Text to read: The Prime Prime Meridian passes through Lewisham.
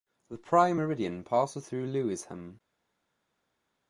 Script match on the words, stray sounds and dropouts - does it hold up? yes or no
no